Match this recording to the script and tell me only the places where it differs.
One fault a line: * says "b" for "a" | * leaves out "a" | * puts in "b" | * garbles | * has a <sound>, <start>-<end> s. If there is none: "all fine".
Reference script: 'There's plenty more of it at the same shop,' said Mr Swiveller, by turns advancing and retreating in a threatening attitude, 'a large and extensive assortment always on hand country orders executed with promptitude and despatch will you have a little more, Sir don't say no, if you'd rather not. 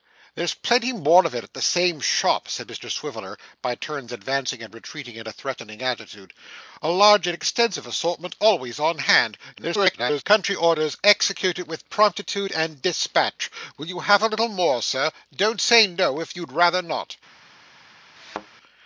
* garbles
* has a thud, 18.2-18.5 s